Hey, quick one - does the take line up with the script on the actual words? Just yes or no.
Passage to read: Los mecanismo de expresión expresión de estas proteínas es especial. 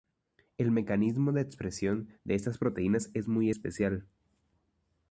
no